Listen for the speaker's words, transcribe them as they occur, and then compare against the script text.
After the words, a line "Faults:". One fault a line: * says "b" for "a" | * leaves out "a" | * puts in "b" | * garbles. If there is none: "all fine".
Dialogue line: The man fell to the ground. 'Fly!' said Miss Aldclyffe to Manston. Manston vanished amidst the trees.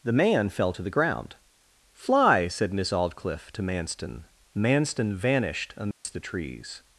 The man fell to the ground. 'Fly!' said Miss Aldclyffe to Manston. Manston vanished amidst the trees.
Faults:
all fine